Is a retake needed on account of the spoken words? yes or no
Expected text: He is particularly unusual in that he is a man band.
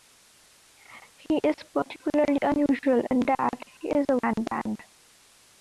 no